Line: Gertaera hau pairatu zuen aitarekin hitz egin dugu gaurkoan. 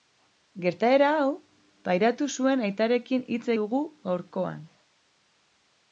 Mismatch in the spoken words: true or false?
true